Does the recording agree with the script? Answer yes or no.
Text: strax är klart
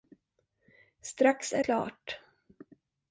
yes